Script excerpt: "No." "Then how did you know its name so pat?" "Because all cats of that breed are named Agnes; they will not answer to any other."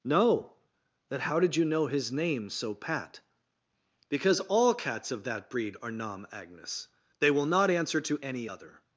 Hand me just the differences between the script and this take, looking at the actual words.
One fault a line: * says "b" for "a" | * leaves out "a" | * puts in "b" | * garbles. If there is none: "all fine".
* says "his" for "its"
* says "nam" for "named"